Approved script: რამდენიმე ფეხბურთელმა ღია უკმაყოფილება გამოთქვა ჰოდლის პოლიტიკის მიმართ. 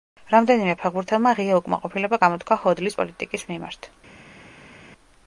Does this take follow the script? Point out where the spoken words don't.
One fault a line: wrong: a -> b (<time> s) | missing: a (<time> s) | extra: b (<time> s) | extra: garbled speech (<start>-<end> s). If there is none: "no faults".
no faults